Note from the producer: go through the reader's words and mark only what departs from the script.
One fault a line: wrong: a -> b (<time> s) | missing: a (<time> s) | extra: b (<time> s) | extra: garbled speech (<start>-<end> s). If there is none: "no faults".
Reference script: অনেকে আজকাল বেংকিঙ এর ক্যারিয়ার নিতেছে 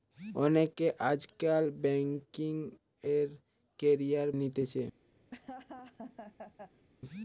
no faults